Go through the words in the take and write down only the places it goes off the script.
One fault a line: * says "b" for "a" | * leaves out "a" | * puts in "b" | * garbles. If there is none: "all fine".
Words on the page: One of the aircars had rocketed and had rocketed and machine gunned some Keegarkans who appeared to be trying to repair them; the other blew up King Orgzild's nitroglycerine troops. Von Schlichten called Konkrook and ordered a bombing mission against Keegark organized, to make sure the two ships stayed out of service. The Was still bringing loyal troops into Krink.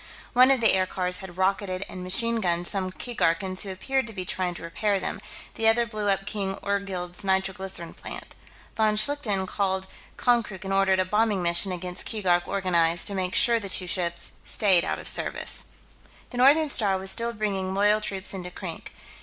* leaves out "had rocketed and"
* says "plant" for "troops"
* puts in "Northern Star"